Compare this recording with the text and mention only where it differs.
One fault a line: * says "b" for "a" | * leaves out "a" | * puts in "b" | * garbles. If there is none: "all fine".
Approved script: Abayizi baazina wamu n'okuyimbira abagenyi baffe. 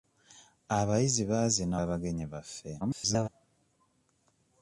* leaves out "wamu n'okuyimbira"
* garbles